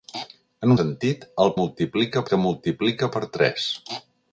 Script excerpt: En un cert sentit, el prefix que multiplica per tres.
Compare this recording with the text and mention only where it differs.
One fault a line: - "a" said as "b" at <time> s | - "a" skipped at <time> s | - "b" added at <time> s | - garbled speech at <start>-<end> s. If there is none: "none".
- "cert" skipped at 0.8 s
- "prefix" said as "multiplica" at 1.6 s